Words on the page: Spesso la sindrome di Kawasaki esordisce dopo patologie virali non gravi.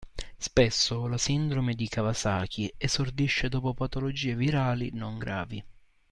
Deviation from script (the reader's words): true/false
false